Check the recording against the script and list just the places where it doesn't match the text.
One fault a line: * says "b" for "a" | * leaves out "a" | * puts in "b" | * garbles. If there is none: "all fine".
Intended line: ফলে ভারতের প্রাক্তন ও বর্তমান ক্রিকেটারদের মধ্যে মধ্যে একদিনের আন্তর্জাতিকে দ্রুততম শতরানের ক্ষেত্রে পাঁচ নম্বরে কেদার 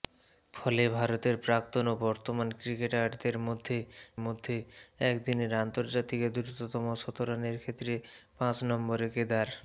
all fine